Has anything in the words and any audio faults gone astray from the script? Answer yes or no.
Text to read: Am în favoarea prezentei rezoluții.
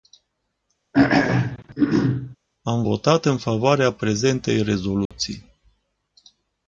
yes